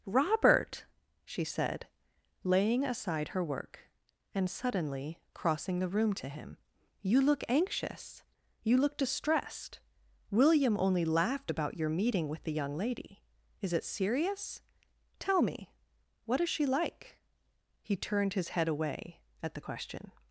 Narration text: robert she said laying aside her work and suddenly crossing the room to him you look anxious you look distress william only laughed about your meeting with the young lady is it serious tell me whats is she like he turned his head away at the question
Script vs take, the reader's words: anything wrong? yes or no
yes